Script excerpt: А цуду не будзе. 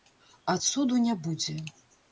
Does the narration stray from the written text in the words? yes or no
no